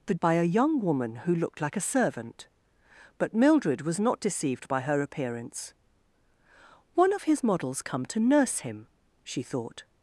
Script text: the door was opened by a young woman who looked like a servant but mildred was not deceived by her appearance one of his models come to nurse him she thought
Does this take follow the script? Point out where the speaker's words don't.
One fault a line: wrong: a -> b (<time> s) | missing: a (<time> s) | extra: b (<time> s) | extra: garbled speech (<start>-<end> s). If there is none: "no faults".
missing: door was opened (0.1 s)